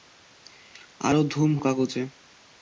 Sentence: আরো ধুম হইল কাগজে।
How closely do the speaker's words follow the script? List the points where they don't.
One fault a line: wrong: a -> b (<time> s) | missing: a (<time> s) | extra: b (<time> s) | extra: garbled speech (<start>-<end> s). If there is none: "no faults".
missing: হইল (1.5 s)